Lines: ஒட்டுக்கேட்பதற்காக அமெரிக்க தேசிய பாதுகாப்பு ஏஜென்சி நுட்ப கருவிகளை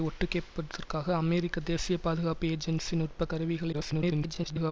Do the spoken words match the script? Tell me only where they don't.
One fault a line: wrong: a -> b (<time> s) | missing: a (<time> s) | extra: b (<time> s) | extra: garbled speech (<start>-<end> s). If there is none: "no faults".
extra: garbled speech (3.7-4.7 s)